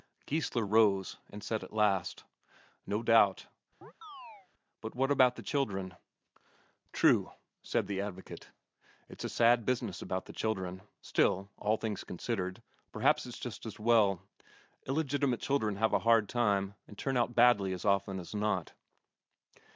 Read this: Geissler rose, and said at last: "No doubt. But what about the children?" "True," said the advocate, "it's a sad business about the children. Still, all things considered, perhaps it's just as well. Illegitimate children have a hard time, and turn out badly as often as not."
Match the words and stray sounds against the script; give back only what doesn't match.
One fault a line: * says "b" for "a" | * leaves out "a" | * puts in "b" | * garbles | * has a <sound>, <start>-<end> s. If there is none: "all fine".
* has a chirp, 3.8-4.5 s